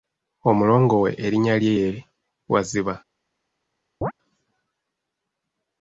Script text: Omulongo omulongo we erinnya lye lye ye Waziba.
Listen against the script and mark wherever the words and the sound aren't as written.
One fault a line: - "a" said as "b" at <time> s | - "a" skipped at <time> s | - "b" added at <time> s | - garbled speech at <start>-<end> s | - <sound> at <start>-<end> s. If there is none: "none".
- "omulongo" skipped at 0.9 s
- "lye" skipped at 1.7 s
- chirp at 4.0-4.1 s